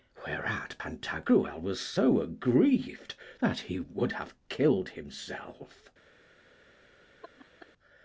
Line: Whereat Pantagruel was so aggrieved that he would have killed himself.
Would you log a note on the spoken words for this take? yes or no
no